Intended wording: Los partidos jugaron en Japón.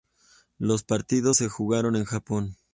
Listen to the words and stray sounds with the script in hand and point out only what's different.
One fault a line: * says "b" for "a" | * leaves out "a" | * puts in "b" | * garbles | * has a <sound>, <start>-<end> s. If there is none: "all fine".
* puts in "se"